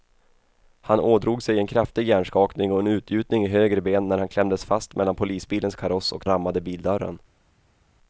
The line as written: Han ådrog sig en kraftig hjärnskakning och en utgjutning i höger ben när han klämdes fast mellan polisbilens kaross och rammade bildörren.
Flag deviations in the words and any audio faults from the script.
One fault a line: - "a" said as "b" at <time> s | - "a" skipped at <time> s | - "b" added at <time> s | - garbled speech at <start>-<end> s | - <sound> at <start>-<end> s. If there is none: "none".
none